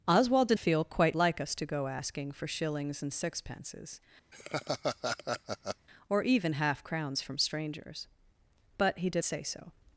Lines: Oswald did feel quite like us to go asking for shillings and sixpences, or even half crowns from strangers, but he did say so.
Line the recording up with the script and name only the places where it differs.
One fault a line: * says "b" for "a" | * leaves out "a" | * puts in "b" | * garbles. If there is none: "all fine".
all fine